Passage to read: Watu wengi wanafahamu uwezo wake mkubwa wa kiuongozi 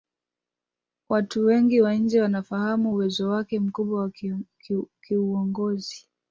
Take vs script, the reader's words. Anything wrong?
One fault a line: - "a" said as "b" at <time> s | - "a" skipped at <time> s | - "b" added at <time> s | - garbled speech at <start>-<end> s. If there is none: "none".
- "wa nje" added at 1.8 s